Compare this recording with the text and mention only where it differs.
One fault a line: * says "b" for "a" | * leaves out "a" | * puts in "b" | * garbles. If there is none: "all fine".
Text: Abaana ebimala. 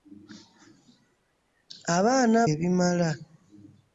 all fine